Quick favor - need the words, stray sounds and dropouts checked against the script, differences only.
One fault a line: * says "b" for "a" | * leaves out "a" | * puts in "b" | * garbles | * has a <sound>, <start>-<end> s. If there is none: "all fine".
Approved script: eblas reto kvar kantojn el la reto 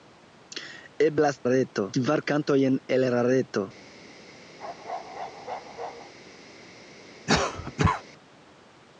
* has a bark, 4.6-6.1 s
* has a cough, 7.3-8.0 s